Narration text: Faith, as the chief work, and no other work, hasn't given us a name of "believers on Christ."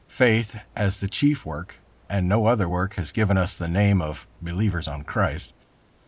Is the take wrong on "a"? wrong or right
wrong